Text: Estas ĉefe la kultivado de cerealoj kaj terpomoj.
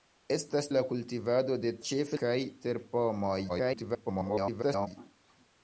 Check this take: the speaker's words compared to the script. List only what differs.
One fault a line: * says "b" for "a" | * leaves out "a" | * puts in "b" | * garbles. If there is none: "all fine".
* leaves out "ĉefe"
* says "ĉefe" for "cerealoj"
* garbles